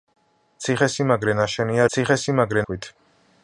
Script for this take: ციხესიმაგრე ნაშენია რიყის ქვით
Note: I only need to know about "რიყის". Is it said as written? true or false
false